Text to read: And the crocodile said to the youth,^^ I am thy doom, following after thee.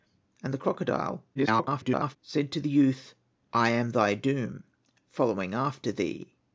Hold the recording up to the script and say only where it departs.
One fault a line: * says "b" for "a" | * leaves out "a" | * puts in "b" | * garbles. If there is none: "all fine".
* garbles